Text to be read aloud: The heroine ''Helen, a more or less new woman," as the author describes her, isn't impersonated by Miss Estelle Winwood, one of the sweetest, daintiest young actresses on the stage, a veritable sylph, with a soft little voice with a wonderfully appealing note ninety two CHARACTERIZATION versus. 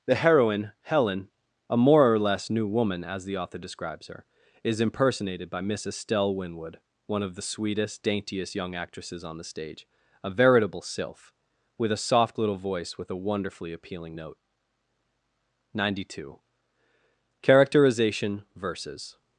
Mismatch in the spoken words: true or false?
true